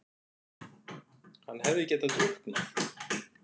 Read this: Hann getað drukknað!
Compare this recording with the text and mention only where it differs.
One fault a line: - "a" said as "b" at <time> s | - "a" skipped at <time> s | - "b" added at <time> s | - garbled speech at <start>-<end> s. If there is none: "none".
- "hefði" added at 1.7 s